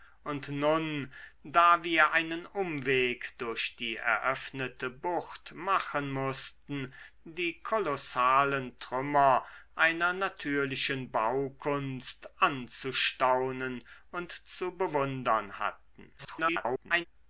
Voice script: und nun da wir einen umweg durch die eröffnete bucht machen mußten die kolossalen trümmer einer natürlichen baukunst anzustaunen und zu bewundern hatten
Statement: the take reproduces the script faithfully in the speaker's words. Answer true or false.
false